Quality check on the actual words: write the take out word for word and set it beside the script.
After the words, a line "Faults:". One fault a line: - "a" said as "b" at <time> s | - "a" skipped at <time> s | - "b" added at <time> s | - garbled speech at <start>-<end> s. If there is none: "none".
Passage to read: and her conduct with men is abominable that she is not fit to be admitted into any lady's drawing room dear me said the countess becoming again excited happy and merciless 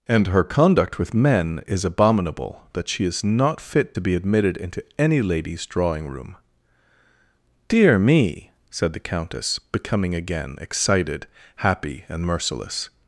and her conduct with men is abominable that she is not fit to be admitted into any lady's drawing room dear me said the countess becoming again excited happy and merciless
Faults:
none